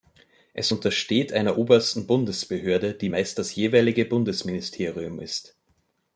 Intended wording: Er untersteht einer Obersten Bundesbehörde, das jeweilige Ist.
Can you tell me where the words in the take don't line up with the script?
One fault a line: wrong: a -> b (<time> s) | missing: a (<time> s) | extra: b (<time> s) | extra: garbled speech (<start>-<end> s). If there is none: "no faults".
wrong: Er -> Es (0.6 s)
extra: die meist (2.9 s)
extra: Bundesministerium (4.0 s)